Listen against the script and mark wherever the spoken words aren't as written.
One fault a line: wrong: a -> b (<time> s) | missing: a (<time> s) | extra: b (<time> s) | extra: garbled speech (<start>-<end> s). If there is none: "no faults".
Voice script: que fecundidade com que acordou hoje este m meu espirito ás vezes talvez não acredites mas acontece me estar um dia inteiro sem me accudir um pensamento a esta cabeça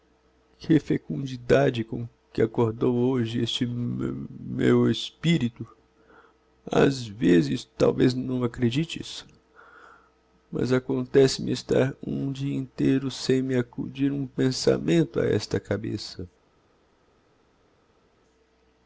no faults